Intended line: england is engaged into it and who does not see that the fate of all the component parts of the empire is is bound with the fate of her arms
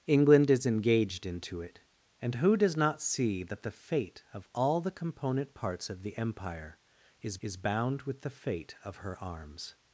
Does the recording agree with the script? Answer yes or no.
yes